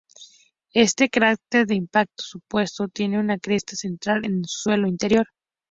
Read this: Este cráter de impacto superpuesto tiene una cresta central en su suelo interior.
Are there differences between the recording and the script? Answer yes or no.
no